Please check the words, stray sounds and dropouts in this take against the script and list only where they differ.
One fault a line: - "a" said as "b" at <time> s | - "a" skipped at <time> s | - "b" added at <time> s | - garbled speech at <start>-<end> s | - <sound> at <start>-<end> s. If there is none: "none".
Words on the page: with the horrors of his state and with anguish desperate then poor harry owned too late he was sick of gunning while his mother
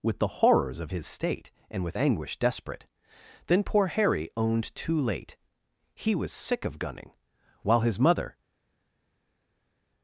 none